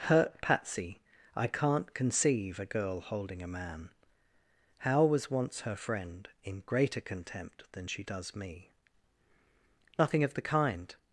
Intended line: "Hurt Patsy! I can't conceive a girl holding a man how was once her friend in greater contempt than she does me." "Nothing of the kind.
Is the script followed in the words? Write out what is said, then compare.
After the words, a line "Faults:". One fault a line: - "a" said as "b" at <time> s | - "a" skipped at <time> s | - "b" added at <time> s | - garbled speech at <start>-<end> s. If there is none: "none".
"Hurt Patsy! I can't conceive a girl holding a man how was once her friend in greater contempt than she does me." "Nothing of the kind.
Faults:
none